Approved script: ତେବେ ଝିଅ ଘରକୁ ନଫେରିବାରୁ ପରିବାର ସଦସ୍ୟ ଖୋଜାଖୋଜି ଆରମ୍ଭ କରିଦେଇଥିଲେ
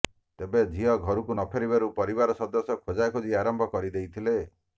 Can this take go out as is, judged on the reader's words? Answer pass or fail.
pass